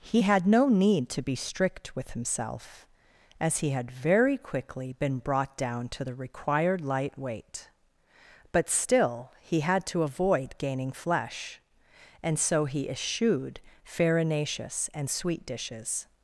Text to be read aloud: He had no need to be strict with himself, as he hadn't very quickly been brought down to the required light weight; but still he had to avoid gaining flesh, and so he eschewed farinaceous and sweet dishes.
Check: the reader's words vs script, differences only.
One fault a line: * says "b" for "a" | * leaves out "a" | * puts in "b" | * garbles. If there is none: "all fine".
* says "had" for "hadn't"